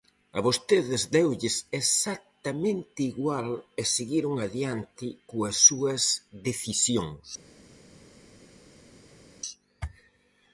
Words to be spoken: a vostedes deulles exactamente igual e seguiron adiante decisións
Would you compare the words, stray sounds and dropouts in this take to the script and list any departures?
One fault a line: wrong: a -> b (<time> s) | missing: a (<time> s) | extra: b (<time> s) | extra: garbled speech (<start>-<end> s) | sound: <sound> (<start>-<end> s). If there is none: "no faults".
extra: coas súas (5.3 s)